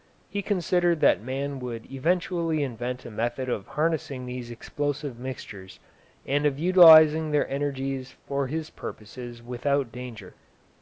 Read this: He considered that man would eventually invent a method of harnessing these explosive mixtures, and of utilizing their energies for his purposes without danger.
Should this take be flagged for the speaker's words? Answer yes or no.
no